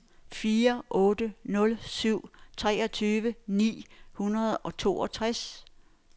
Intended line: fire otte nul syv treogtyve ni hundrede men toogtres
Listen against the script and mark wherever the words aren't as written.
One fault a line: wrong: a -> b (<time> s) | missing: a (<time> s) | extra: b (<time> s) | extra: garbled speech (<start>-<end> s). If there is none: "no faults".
wrong: men -> og (4.6 s)